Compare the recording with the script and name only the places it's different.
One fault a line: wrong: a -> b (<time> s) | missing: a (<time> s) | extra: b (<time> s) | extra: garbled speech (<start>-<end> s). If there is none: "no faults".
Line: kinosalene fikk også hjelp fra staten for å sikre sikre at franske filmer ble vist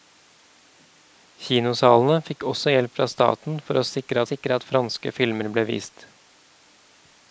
no faults